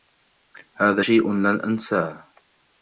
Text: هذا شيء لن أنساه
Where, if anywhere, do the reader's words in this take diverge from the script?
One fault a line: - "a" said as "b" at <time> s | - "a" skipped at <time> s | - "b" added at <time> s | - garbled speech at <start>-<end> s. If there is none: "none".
none